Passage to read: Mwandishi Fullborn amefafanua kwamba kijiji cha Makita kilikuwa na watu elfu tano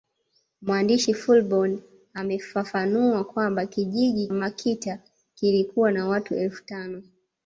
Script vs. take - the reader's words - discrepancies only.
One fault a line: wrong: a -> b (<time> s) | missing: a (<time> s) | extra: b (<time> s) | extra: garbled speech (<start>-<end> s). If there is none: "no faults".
missing: cha (4.3 s)